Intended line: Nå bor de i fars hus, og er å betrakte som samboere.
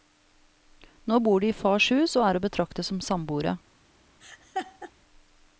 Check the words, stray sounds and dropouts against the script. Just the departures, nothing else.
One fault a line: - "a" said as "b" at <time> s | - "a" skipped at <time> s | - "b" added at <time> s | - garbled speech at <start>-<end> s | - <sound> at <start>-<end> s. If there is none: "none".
- laugh at 4.2-4.9 s